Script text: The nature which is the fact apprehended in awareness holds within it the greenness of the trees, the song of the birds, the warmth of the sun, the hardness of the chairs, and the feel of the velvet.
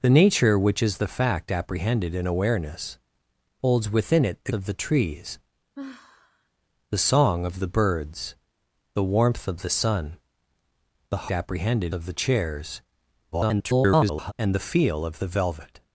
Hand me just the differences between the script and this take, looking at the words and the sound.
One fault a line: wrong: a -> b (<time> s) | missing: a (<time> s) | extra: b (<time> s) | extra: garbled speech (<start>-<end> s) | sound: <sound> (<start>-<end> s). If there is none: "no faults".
missing: greenness (4.5 s)
sound: sigh (5.7-6.5 s)
wrong: hardness -> apprehended (11.3 s)
extra: garbled speech (13.3-14.3 s)